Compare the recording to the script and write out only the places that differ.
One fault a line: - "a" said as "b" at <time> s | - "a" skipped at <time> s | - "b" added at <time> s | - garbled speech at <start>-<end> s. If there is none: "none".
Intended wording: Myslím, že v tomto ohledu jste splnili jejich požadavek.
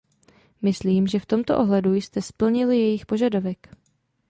none